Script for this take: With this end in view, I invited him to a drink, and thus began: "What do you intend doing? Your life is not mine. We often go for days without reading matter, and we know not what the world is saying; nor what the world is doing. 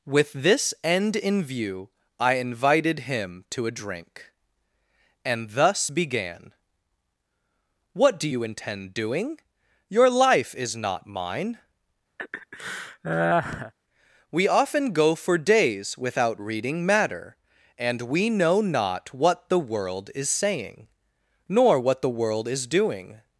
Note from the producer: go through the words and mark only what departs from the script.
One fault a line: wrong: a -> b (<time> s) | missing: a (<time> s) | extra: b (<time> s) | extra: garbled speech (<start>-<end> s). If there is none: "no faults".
no faults